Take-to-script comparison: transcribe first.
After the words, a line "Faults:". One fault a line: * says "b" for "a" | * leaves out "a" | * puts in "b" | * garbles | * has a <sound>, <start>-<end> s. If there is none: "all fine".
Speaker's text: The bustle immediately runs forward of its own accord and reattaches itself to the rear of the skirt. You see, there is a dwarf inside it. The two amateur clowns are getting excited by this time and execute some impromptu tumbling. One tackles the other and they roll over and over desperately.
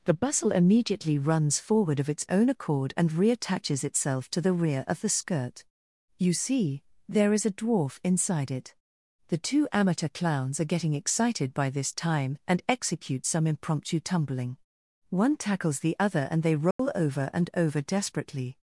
The bustle immediately runs forward of its own accord and reattaches itself to the rear of the skirt. You see, there is a dwarf inside it. The two amateur clowns are getting excited by this time and execute some impromptu tumbling. One tackles the other and they roll over and over desperately.
Faults:
* has a dropout, 16.7-16.8 s